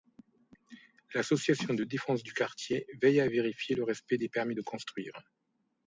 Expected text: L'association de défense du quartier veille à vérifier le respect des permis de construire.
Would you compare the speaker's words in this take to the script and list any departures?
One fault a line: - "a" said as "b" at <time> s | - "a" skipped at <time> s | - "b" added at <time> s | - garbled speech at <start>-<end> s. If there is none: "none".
none